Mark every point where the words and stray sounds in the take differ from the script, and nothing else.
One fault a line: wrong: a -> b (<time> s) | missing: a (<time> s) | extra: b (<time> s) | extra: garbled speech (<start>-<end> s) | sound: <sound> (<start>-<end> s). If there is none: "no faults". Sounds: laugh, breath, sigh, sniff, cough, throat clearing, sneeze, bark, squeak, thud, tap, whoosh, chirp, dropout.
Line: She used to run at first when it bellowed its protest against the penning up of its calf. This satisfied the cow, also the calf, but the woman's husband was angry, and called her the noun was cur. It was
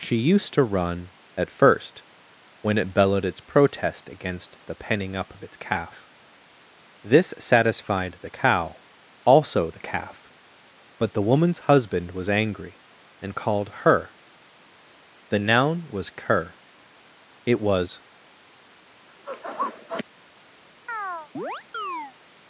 sound: sniff (19.1-20.0 s)
sound: chirp (20.9-22.1 s)